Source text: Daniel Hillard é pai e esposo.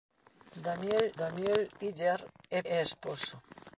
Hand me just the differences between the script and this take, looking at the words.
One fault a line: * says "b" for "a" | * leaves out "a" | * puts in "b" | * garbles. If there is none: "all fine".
* puts in "daniel"
* leaves out "pai"